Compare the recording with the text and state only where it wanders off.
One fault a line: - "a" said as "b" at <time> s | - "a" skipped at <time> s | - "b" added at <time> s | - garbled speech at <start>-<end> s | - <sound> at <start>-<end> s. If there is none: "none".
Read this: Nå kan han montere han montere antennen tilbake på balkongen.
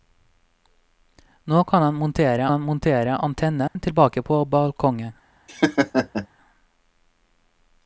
- dropout at 3.7-3.8 s
- laugh at 5.5-6.3 s